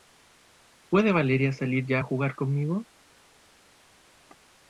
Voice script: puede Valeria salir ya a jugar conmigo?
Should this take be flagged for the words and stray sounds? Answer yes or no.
no